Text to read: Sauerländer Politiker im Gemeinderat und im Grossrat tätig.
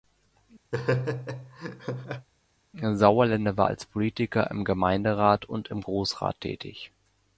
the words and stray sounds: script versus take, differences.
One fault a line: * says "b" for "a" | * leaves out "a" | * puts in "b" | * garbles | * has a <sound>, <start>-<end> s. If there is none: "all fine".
* has a laugh, 0.7-2.3 s
* puts in "war als"